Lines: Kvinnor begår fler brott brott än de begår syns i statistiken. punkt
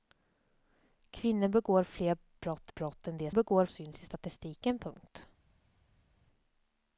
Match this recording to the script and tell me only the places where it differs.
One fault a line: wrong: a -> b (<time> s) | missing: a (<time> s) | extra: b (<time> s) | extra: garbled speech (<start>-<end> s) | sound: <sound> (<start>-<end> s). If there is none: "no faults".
no faults